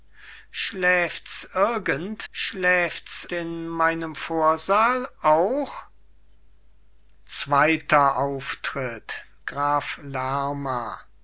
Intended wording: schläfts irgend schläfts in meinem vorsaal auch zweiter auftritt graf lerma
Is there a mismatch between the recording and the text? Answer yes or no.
no